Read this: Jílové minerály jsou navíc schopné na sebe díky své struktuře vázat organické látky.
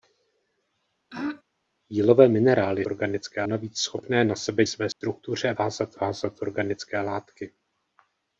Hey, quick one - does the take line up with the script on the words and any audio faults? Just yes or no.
no